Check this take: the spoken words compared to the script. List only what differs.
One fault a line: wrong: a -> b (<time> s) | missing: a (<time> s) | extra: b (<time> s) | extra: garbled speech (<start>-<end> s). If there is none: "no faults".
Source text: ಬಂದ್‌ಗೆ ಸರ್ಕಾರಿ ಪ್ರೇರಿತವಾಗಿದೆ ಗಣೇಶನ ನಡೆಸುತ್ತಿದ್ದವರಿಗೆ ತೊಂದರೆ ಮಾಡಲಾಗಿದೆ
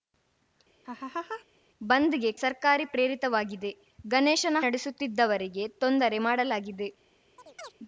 no faults